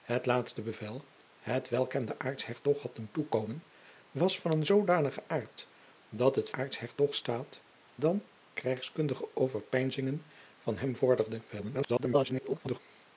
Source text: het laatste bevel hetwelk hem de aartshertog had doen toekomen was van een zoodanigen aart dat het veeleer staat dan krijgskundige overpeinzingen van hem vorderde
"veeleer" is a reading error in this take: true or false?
true